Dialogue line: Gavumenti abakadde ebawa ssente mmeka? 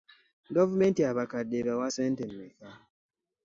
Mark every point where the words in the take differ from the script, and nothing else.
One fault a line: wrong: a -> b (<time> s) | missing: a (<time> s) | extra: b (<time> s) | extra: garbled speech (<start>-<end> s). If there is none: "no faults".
no faults